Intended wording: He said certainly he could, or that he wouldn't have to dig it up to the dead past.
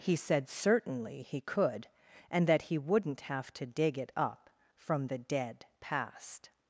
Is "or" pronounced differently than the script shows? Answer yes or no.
yes